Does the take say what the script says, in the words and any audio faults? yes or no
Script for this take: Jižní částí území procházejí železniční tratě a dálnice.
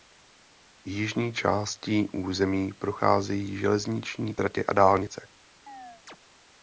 no